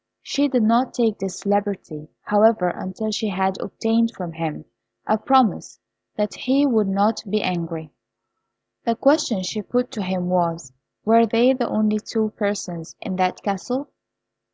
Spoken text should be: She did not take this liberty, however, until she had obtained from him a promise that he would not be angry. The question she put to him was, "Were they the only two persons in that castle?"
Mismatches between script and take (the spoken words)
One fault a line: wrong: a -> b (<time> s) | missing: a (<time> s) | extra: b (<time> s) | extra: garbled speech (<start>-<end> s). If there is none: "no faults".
no faults